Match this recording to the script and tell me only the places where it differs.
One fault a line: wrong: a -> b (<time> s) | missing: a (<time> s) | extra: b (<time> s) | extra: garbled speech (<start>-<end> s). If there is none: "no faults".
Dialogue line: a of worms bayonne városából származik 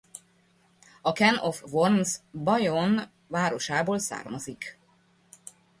extra: can (1.1 s)